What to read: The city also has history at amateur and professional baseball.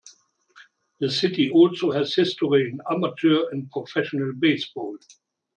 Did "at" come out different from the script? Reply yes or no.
yes